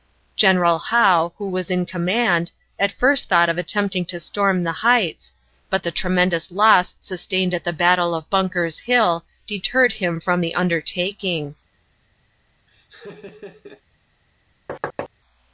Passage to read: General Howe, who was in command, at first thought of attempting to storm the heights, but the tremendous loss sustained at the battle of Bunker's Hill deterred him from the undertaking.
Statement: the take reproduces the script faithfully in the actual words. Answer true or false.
true